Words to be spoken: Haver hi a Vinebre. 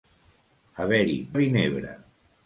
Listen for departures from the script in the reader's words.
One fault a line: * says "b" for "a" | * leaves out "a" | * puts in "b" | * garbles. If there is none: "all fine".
all fine